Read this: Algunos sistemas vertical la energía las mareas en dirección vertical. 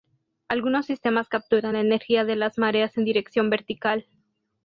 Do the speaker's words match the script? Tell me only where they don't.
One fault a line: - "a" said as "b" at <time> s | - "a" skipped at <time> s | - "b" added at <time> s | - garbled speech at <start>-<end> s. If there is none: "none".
- "vertical" said as "capturan" at 1.3 s
- "de" added at 2.2 s